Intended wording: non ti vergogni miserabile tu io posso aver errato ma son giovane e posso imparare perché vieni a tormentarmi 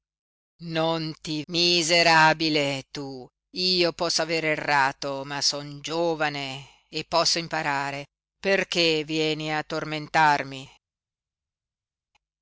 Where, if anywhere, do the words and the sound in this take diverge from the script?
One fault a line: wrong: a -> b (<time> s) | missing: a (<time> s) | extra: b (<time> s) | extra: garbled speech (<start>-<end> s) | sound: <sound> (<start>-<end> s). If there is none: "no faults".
missing: vergogni (1.4 s)